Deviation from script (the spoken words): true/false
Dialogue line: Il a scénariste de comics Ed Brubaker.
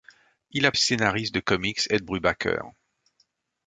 false